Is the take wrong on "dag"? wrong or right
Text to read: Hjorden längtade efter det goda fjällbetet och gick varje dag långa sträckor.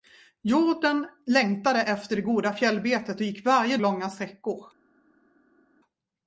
wrong